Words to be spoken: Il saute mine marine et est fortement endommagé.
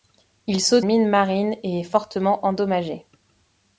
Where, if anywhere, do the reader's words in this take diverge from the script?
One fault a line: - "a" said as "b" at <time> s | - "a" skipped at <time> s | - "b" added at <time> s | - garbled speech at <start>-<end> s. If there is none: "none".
none